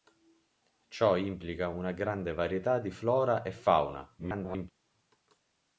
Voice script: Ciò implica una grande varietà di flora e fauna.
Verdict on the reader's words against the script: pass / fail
fail